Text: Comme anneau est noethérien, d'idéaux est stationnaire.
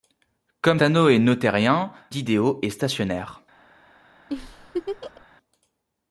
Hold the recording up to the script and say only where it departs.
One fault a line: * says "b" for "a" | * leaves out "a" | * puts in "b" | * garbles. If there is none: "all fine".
all fine